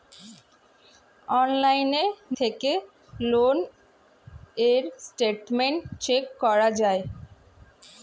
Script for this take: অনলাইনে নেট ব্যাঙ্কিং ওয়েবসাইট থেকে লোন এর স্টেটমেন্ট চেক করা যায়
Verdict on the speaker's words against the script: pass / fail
fail